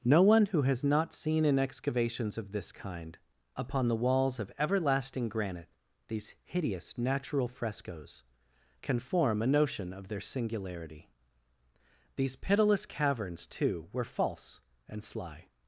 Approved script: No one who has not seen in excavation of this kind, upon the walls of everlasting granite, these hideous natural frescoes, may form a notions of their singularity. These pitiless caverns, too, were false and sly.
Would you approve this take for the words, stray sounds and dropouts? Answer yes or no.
no